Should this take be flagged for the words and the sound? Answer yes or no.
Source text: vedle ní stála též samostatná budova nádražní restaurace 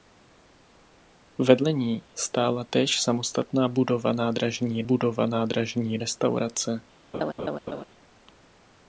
yes